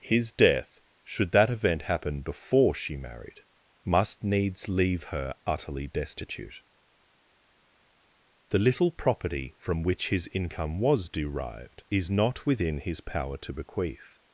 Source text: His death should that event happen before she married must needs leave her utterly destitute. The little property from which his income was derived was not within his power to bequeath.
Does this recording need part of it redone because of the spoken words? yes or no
yes